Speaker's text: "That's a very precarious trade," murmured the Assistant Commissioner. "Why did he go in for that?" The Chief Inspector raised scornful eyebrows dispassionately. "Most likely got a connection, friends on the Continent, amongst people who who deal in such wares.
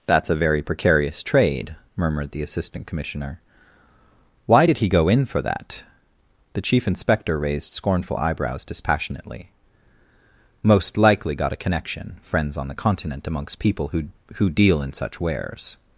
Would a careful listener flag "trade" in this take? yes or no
no